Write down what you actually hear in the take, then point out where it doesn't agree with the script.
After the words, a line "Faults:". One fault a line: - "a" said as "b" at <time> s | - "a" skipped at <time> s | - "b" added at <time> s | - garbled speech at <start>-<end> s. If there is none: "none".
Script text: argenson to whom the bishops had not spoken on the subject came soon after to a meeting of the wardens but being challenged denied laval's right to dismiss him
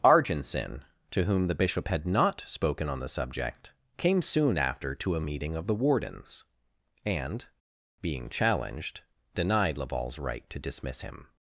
argenson to whom the bishop had not spoken on the subject came soon after to a meeting of the wardens and being challenged denied laval's right to dismiss him
Faults:
- "bishops" said as "bishop" at 1.6 s
- "but" said as "and" at 7.1 s